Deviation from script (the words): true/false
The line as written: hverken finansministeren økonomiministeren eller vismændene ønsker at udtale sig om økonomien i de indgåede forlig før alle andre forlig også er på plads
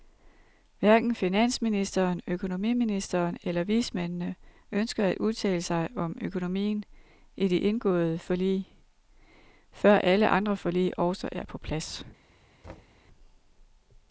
false